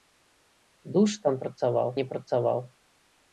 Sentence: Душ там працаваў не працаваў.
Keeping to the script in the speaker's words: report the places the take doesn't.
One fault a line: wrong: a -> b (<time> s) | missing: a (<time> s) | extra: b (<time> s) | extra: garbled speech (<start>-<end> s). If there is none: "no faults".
no faults